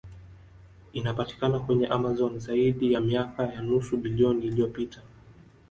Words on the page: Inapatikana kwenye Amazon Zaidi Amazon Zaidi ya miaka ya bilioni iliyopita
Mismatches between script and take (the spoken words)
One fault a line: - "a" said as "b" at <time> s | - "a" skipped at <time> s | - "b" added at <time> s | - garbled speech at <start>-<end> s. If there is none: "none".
- "Amazon Zaidi" skipped at 2.9 s
- "nusu" added at 3.6 s